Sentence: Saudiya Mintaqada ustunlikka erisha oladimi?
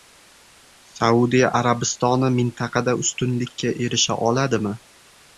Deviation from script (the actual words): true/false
true